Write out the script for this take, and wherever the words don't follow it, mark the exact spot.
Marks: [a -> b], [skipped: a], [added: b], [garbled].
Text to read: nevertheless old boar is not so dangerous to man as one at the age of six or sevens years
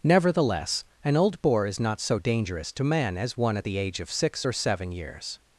nevertheless [added: an] old boar is not so dangerous to man as one at the age of six or [sevens -> seven] years